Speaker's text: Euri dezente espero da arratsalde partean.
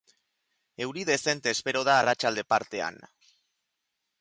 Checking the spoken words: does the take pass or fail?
pass